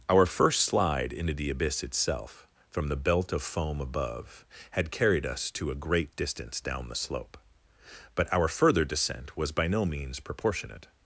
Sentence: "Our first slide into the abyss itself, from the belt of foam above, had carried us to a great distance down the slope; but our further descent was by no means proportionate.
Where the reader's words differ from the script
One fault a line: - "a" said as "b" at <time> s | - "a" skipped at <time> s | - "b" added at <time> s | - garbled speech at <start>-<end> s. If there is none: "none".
none